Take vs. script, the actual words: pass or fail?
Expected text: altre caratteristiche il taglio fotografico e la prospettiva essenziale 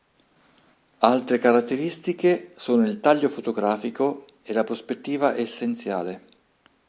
fail